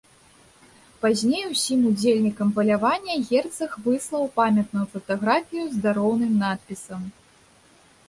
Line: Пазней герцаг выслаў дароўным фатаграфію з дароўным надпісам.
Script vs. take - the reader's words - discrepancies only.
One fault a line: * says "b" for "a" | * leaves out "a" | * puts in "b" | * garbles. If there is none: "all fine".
* puts in "усім удзельнікам палявання"
* says "памятную" for "дароўным"